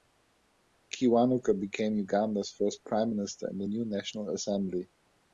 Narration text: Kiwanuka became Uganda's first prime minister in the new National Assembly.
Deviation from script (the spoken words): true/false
false